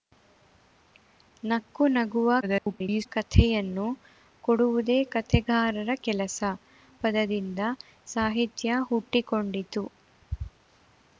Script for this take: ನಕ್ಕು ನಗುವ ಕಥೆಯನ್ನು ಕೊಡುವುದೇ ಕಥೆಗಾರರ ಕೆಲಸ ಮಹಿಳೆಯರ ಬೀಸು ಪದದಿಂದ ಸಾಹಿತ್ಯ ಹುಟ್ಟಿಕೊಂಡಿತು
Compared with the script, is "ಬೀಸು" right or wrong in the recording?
wrong